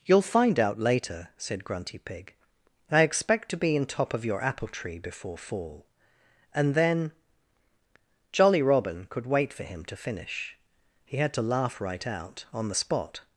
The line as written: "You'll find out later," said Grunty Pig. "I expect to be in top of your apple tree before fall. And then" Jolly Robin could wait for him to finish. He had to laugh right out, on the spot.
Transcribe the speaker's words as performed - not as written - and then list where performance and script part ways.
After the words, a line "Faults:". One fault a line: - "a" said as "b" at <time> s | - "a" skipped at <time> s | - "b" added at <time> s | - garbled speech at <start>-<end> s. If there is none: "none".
"You'll find out later," said Grunty Pig. "I expect to be in top of your apple tree before fall. And then" Jolly Robin could wait for him to finish. He had to laugh right out, on the spot.
Faults:
none